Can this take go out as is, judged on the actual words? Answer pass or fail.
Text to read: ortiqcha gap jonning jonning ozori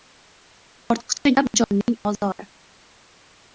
fail